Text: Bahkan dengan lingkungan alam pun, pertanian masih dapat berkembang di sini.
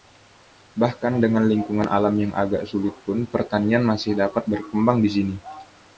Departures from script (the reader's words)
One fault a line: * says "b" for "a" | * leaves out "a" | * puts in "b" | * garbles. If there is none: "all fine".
* puts in "yang agak sulit"